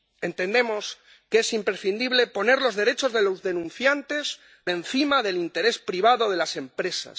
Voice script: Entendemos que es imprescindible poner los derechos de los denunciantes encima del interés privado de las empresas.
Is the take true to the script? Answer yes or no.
yes